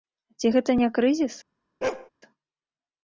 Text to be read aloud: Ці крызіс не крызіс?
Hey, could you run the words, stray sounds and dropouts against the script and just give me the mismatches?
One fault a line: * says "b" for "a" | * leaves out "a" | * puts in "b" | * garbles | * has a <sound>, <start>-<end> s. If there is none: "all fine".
* says "гэта" for "крызіс"
* has a bark, 1.8-2.1 s